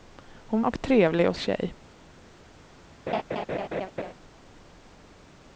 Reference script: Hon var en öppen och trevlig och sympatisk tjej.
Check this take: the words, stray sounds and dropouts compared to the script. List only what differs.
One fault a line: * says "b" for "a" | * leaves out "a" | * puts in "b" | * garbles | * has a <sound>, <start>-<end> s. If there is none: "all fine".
* leaves out "var en öppen"
* leaves out "sympatisk"
* has a laugh, 3.1-4.1 s